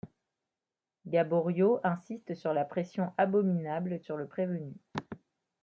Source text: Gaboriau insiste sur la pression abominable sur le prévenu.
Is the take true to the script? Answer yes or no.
yes